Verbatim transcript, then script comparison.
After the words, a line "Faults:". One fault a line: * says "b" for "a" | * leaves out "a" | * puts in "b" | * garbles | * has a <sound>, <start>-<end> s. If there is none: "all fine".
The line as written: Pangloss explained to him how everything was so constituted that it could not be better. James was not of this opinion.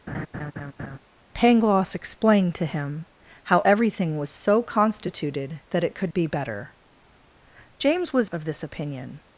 Pangloss explained to him how everything was so constituted that it could be better. James was of this opinion.
Faults:
* has a laugh, 0.1-1.0 s
* leaves out "not"
* leaves out "not"